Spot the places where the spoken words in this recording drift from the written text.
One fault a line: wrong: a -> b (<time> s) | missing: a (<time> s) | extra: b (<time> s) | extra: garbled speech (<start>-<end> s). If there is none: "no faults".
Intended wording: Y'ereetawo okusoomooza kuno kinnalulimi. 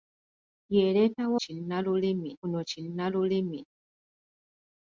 wrong: okusoomooza -> kinnalulimi (1.4 s)